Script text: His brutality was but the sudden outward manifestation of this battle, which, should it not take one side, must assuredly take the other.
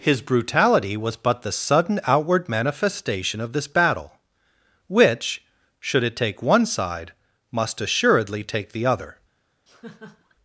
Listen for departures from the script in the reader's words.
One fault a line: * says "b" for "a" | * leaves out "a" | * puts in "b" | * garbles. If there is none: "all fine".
* leaves out "not"